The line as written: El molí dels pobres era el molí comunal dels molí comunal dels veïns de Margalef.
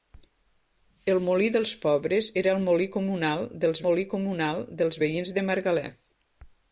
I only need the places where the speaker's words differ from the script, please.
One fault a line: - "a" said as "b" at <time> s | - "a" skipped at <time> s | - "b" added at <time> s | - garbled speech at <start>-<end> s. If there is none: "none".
none